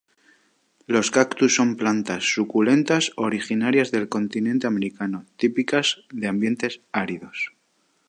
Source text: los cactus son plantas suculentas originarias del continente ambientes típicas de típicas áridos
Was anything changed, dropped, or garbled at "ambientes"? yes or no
yes